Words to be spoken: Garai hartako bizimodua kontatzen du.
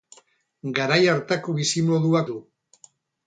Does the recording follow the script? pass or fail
fail